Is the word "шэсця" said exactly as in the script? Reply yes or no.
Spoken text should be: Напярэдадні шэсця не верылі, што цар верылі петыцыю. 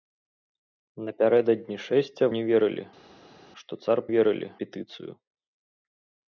yes